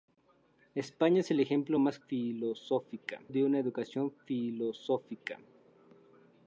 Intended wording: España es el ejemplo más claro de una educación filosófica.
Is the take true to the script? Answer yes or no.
no